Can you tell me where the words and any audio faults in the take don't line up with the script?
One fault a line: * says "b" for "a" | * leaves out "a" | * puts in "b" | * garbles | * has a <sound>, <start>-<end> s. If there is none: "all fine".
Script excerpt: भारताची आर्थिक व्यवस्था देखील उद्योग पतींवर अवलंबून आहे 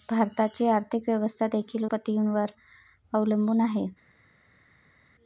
* leaves out "उद्योग"